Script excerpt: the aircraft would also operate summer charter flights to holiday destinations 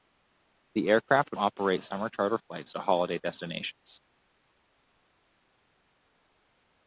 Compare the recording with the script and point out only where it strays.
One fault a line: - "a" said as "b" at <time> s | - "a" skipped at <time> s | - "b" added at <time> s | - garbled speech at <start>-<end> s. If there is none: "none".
- "also" skipped at 1.4 s